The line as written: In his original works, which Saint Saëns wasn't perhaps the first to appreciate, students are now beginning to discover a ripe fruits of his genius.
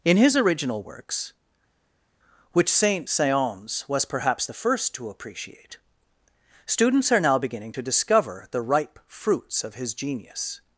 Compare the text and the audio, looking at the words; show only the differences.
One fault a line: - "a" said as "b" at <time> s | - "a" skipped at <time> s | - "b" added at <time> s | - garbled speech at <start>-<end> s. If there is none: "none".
- "wasn't" said as "was" at 3.9 s
- "a" said as "the" at 8.5 s